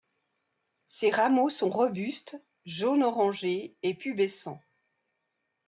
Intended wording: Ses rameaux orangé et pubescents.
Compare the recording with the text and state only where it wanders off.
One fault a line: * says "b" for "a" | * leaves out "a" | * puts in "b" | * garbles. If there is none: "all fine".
* puts in "sont robustes jaune"